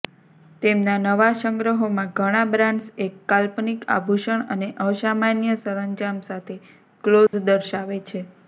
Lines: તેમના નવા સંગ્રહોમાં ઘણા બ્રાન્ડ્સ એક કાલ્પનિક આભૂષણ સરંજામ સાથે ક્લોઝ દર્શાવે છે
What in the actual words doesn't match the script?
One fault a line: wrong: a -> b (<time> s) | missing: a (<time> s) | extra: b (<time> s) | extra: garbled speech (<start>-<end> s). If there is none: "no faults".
extra: અને અસામાન્ય (4.5 s)